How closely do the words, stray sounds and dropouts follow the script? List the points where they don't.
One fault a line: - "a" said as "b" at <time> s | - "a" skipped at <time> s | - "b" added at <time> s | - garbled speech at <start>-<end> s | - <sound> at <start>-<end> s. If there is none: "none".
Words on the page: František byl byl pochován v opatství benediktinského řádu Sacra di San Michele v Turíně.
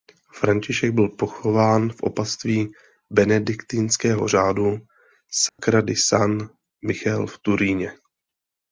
- "byl" skipped at 1.1 s
- dropout at 5.5-5.6 s